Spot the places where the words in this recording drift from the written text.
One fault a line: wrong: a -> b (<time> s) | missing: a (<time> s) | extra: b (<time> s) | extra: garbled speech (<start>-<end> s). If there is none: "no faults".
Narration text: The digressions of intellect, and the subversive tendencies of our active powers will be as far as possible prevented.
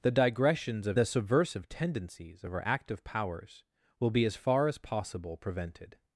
missing: intellect and (1.0 s)